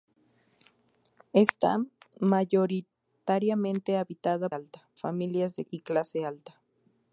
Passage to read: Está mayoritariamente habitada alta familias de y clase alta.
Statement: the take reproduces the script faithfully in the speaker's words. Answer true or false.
true